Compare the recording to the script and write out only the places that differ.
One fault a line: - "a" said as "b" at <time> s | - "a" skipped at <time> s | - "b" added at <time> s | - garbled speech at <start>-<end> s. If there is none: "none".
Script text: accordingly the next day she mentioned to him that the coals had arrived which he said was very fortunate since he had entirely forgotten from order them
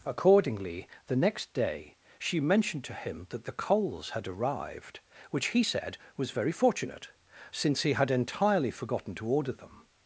- "from" said as "to" at 9.1 s